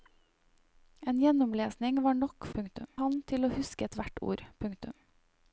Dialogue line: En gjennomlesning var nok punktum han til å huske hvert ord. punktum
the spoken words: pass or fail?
pass